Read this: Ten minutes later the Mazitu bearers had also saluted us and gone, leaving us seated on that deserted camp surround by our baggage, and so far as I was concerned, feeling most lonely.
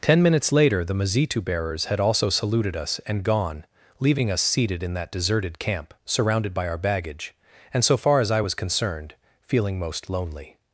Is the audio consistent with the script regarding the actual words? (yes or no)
no